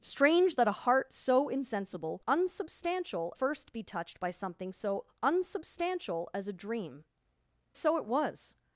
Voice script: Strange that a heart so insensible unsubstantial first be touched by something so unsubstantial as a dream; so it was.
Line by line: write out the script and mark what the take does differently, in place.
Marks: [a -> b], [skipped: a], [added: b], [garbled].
Strange that a heart so insensible unsubstantial first be touched by something so unsubstantial as a dream; so it was.